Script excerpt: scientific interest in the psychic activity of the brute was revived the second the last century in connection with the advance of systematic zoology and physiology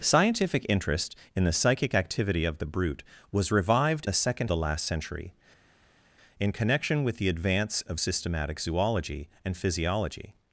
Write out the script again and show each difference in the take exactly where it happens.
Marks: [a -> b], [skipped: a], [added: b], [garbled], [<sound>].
scientific interest in the psychic activity of the brute was revived the second the last century in connection with the advance of systematic zoology and physiology